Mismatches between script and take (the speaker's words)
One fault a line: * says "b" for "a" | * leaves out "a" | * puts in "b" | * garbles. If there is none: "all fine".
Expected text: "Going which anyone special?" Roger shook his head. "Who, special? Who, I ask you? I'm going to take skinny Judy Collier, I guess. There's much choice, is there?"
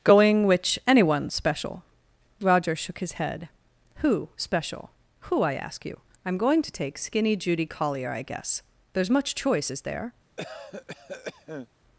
all fine